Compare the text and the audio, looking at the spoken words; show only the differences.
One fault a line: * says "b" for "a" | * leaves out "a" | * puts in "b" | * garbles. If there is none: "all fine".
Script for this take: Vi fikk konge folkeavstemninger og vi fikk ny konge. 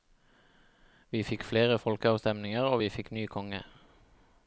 * says "flere" for "konge"